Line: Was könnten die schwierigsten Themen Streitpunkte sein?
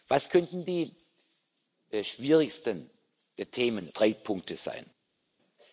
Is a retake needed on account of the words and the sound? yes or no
no